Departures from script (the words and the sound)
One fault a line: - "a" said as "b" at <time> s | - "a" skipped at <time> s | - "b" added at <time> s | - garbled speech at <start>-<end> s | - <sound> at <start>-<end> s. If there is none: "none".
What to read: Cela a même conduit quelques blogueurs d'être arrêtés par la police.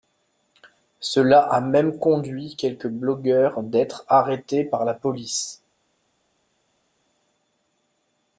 none